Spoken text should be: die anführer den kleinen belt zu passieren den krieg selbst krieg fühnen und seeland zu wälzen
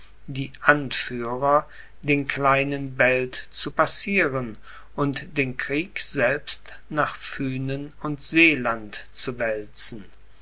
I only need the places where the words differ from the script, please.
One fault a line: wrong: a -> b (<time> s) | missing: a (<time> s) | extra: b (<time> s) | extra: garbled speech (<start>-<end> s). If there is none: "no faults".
extra: und (4.9 s)
wrong: krieg -> nach (6.9 s)